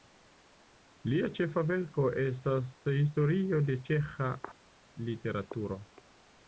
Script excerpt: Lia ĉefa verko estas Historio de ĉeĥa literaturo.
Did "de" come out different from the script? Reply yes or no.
no